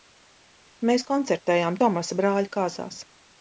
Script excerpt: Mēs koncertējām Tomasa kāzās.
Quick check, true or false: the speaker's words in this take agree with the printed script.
false